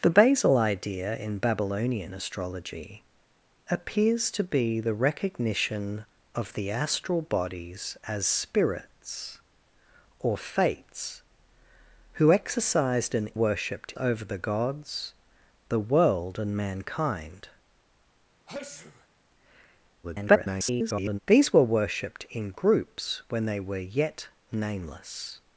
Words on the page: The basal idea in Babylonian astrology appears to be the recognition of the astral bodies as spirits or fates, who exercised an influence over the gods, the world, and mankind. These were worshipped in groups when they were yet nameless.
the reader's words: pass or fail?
fail